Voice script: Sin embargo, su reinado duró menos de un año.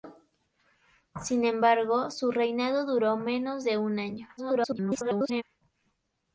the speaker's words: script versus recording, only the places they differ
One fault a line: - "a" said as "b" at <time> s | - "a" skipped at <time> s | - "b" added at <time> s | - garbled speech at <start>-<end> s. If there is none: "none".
- garbled speech at 4.4-5.4 s